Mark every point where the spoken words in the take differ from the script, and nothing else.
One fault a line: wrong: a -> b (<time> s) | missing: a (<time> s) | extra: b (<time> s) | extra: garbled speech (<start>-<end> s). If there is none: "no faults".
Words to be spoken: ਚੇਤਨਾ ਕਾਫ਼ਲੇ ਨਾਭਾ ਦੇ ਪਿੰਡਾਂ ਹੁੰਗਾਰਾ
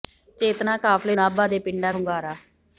no faults